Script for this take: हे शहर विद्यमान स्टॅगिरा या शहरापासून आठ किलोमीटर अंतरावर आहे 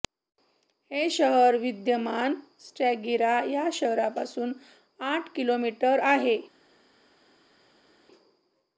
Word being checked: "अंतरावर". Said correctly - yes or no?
no